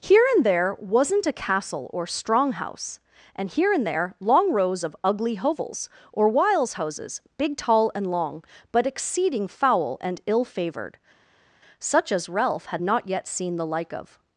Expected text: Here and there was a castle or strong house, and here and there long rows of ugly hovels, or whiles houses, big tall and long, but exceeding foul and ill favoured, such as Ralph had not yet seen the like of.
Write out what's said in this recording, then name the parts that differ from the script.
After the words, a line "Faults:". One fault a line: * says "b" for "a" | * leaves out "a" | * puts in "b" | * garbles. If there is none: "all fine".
Here and there wasn't a castle or strong house, and here and there long rows of ugly hovels, or whiles houses, big tall and long, but exceeding foul and ill favoured, such as Ralph had not yet seen the like of.
Faults:
* says "wasn't" for "was"